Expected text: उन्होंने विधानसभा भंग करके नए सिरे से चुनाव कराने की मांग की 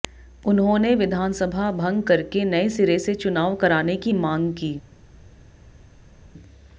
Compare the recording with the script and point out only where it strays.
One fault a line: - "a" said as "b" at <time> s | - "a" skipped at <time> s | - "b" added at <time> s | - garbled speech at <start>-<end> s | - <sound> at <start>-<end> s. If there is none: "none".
none